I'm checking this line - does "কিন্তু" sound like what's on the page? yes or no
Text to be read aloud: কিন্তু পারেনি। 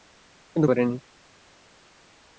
yes